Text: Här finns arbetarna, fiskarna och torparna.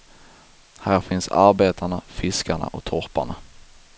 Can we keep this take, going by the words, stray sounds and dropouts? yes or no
yes